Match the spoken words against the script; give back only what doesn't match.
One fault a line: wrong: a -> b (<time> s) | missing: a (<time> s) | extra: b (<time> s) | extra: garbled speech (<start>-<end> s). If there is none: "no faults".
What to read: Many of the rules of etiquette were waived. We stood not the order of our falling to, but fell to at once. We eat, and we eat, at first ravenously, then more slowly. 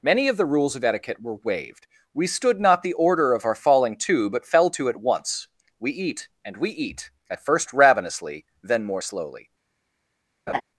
no faults